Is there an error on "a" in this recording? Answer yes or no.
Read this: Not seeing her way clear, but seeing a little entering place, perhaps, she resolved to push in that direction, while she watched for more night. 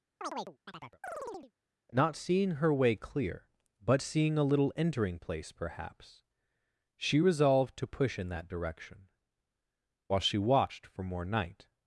no